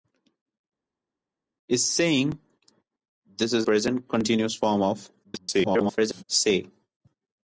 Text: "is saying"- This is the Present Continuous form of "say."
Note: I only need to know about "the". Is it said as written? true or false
false